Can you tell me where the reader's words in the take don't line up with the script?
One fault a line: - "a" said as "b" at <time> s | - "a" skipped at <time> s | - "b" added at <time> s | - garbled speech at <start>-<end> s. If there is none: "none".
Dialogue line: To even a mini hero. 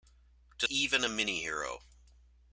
none